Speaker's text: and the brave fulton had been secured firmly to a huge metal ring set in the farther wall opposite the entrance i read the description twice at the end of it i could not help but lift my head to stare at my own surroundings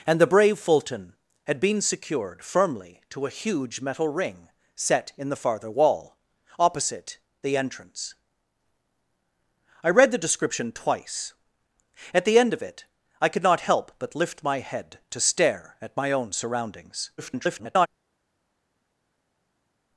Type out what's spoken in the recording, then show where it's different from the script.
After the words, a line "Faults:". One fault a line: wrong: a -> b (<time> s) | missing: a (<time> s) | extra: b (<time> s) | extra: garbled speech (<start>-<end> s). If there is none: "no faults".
and the brave fulton had been secured firmly to a huge metal ring set in the farther wall opposite the entrance i read the description twice at the end of it i could not help but lift my head to stare at my own surroundings [garbled]
Faults:
extra: garbled speech (17.2-17.9 s)